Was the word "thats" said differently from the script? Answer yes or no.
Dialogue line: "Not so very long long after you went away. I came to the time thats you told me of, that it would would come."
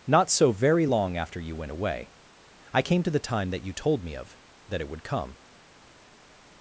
yes